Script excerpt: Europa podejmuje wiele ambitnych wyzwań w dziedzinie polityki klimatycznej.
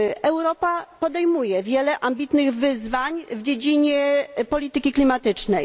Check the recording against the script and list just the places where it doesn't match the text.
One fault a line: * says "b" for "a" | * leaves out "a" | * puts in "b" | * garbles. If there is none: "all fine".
all fine